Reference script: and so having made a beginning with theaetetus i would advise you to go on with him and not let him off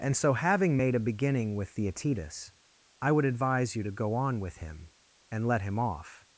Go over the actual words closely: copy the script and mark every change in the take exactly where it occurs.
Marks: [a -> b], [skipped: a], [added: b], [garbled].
and so having made a beginning with theaetetus i would advise you to go on with him and [skipped: not] let him off